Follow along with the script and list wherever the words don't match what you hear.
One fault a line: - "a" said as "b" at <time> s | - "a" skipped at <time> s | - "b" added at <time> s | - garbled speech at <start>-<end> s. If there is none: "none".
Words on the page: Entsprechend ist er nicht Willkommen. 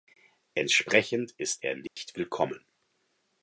none